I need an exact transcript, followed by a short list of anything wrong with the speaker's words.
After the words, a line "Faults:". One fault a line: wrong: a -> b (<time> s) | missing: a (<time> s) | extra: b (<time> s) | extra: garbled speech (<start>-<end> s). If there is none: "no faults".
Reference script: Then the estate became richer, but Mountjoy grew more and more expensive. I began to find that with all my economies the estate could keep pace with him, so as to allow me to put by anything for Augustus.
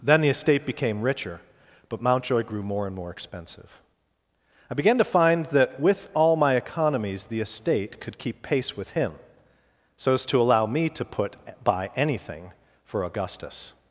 Then the estate became richer, but Mountjoy grew more and more expensive. I began to find that with all my economies the estate could keep pace with him, so as to allow me to put by anything for Augustus.
Faults:
no faults